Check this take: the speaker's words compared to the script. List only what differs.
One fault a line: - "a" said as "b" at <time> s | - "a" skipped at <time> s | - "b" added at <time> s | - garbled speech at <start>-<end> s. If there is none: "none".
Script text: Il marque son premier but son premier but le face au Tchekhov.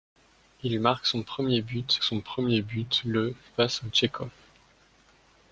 none